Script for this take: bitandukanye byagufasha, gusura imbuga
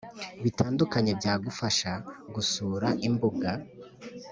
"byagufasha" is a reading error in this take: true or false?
false